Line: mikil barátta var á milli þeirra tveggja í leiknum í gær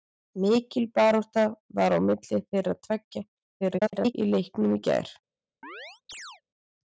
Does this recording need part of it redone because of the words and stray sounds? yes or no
yes